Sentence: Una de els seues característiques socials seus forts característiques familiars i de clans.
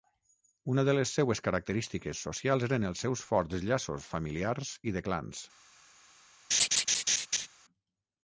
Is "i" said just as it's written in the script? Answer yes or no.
yes